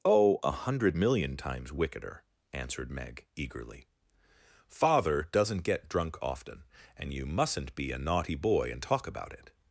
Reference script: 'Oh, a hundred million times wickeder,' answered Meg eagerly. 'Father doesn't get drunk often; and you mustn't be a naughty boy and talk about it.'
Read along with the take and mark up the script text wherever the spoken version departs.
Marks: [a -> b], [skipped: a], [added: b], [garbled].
'Oh, a hundred million times wickeder,' answered Meg eagerly. 'Father doesn't get drunk often; and you mustn't be a naughty boy and talk about it.'